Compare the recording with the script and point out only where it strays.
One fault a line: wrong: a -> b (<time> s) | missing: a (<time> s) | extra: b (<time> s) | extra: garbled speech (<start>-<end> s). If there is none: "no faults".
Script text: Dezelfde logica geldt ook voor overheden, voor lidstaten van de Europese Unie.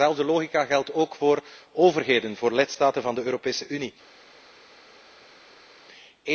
no faults